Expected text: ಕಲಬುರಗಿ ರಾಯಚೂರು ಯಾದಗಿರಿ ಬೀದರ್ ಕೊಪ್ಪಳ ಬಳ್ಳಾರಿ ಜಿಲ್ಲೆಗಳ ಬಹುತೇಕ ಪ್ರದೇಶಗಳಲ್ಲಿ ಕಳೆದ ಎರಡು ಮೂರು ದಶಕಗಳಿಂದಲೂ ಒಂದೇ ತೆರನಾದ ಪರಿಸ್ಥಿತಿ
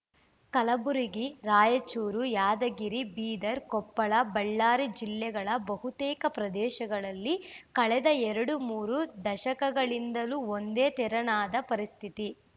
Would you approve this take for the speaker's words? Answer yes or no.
yes